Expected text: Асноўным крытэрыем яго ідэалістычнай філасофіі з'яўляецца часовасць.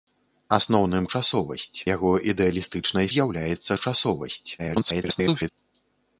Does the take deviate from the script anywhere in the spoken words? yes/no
yes